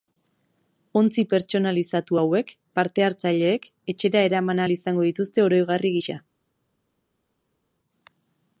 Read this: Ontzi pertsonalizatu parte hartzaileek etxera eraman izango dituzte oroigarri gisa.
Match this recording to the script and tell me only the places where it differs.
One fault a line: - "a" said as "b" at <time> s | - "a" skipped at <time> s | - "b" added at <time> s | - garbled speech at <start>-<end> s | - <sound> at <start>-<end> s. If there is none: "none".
- "hauek" added at 2.2 s
- "ahal" added at 4.6 s